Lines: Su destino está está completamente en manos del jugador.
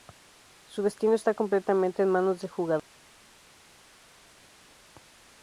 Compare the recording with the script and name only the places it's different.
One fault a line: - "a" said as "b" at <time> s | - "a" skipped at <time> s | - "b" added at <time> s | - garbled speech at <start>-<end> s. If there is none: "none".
- "está" skipped at 1.4 s